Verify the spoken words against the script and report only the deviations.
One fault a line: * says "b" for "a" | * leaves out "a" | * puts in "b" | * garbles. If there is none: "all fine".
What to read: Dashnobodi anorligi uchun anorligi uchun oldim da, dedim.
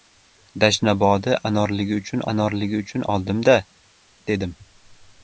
all fine